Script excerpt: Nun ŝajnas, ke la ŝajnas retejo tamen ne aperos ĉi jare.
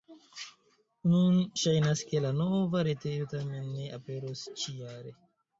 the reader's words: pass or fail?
fail